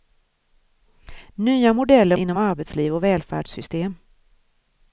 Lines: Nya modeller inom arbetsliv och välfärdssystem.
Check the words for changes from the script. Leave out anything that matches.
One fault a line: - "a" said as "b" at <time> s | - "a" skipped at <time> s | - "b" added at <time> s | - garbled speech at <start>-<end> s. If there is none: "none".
none